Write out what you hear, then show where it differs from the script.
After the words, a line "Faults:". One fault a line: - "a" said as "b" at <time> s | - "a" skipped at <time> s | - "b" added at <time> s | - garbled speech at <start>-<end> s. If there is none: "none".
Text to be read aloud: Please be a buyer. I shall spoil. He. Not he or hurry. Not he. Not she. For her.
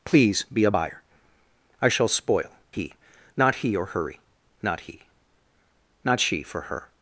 Please be a buyer. I shall spoil. He. Not he or hurry. Not he. Not she. For her.
Faults:
none